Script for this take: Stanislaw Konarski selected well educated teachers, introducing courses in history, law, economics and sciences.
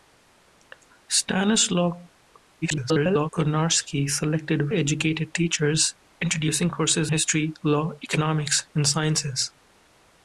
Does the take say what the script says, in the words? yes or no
no